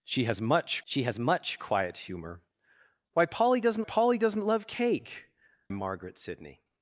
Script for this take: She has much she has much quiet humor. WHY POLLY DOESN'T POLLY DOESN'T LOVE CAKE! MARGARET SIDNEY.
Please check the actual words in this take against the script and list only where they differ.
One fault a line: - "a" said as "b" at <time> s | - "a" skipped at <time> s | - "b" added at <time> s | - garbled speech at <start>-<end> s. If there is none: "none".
none